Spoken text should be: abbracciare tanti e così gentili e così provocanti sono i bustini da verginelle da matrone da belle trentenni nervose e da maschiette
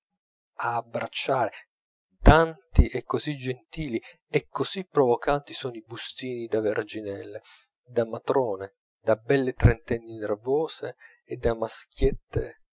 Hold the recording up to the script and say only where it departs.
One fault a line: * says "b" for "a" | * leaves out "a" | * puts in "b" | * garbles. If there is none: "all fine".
all fine